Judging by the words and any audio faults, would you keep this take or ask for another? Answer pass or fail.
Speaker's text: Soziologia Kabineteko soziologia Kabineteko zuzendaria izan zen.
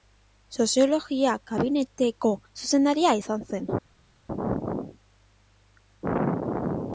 fail